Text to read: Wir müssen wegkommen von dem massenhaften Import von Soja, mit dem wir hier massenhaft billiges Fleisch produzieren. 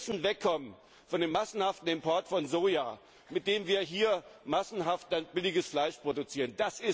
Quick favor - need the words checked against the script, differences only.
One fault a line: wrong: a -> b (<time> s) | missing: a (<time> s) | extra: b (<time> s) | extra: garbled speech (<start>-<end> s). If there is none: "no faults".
no faults